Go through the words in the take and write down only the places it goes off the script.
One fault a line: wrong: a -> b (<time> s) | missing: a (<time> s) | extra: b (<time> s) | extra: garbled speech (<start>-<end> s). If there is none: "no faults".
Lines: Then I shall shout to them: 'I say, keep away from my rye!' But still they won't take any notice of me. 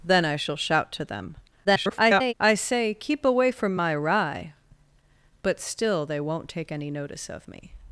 extra: garbled speech (1.6-2.3 s)